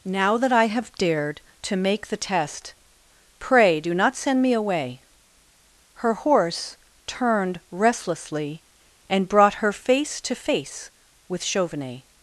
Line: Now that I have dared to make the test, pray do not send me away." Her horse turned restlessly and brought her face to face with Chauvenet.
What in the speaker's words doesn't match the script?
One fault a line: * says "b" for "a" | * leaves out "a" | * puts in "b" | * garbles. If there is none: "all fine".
all fine